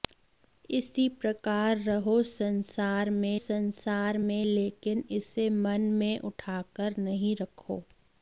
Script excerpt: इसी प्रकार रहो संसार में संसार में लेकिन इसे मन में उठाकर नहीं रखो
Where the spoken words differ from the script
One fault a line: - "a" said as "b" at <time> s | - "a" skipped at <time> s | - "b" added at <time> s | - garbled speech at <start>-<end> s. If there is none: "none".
none